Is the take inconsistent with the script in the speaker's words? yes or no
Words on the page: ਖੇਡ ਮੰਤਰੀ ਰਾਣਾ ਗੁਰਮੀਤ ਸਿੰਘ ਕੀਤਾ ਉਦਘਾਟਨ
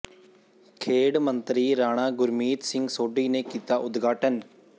yes